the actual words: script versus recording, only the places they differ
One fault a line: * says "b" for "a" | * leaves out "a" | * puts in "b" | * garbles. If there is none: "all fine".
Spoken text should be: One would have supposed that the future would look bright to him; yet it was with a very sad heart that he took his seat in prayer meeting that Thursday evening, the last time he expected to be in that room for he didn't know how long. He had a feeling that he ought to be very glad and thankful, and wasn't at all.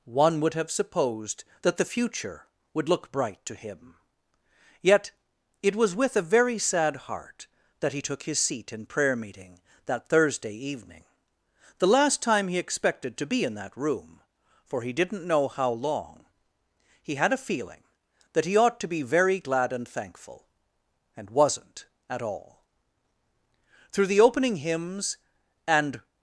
* puts in "Through the opening hymns and"